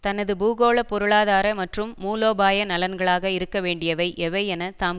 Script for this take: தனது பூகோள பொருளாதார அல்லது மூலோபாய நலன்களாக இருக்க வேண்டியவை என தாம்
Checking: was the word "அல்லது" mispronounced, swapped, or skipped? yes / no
yes